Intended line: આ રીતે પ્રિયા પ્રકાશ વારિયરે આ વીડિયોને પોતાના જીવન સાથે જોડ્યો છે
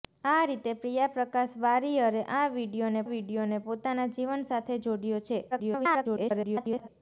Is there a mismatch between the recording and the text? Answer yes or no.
yes